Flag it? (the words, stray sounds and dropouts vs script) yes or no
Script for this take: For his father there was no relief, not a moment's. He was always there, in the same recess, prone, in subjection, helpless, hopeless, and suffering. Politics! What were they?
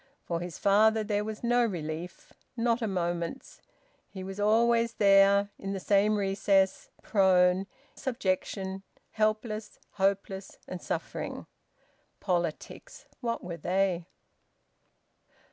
yes